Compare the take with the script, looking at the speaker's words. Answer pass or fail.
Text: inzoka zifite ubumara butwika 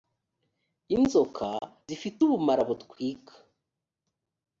pass